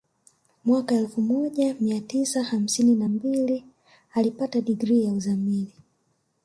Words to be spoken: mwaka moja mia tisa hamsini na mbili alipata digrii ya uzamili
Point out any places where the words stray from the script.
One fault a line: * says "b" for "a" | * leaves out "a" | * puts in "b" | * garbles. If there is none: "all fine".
* puts in "elfu"